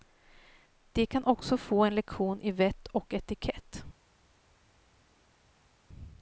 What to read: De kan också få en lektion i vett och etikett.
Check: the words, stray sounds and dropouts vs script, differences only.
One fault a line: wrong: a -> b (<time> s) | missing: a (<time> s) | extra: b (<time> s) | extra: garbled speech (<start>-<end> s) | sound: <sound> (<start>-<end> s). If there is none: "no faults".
no faults